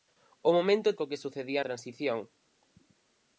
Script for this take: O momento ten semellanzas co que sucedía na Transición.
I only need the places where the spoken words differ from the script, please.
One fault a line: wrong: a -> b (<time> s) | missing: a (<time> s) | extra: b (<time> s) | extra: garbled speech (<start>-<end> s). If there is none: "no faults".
missing: ten semellanzas (0.9 s)
missing: na (1.6 s)